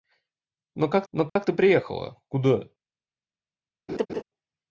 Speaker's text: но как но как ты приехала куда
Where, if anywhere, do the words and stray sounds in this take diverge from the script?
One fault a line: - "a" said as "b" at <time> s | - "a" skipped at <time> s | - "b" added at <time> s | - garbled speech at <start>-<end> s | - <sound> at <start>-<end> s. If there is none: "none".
- dropout at 1.3-1.4 s
- laugh at 3.9-4.2 s